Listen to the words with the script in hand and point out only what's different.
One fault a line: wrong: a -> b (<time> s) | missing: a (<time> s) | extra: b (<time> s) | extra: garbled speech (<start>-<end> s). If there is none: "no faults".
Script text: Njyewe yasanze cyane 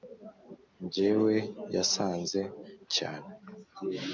no faults